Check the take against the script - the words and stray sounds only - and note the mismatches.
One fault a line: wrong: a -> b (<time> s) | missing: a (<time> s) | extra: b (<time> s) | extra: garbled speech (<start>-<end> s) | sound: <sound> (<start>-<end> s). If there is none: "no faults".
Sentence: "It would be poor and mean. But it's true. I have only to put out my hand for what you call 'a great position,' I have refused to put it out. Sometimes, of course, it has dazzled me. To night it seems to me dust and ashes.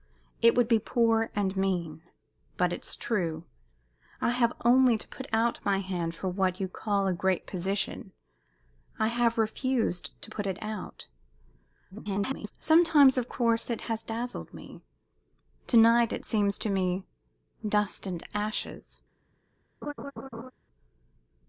extra: garbled speech (11.9-12.5 s)
sound: laugh (19.8-20.5 s)